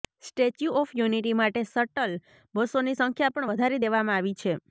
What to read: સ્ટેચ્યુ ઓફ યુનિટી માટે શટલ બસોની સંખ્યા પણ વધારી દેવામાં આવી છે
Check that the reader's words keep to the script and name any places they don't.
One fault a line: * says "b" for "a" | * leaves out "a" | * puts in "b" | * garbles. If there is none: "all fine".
all fine